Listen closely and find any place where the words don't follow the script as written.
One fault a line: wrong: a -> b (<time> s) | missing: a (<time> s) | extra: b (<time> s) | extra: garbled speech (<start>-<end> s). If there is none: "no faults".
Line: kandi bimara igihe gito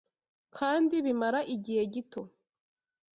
no faults